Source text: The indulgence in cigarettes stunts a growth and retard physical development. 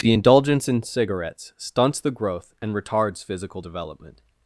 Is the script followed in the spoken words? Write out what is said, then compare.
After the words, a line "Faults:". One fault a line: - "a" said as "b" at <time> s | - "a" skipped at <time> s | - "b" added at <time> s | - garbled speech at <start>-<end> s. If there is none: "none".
The indulgence in cigarettes stunts the growth and retards physical development.
Faults:
- "a" said as "the" at 2.0 s
- "retard" said as "retards" at 2.7 s